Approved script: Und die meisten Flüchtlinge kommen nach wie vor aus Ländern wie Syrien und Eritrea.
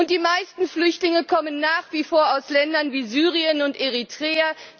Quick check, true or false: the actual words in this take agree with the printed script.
true